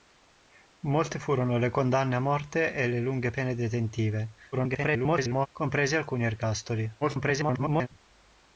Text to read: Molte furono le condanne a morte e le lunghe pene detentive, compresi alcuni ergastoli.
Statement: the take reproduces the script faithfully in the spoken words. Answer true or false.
false